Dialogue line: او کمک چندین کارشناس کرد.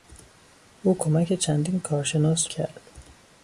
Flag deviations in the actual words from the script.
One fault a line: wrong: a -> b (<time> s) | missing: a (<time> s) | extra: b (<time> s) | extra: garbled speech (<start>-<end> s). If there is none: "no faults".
no faults